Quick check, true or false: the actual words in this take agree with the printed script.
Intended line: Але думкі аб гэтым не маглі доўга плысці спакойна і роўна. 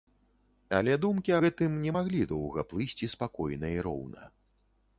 false